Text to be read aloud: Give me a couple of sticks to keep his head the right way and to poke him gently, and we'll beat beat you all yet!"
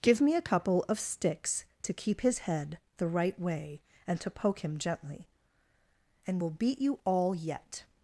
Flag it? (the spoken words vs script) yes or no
yes